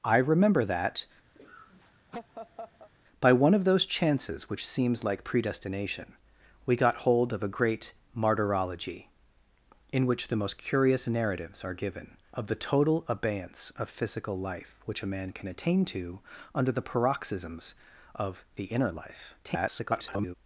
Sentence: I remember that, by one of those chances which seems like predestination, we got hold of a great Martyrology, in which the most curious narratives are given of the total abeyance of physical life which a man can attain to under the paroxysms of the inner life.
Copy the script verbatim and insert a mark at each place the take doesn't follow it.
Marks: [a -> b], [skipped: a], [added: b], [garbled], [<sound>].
I remember that, [laugh] by one of those chances which seems like predestination, we got hold of a great Martyrology, in which the most curious narratives are given of the total abeyance of physical life which a man can attain to under the paroxysms of the inner life. [garbled]